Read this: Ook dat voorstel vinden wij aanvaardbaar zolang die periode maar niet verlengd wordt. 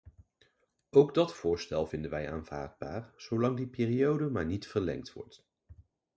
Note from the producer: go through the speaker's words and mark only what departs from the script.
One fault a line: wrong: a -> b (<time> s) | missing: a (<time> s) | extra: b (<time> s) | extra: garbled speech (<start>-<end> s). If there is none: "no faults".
no faults